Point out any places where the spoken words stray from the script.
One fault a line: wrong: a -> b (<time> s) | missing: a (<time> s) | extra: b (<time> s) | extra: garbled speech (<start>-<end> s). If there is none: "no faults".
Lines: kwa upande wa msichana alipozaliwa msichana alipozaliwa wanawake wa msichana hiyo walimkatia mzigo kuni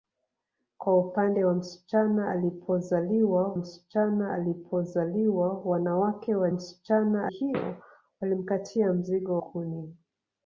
no faults